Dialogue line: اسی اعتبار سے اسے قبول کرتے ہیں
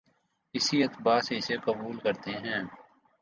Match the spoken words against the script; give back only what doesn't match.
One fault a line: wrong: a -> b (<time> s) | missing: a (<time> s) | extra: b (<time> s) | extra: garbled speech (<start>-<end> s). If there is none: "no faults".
no faults